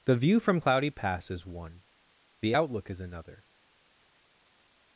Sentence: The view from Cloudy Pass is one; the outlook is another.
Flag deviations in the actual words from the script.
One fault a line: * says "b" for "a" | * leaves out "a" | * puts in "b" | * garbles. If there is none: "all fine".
all fine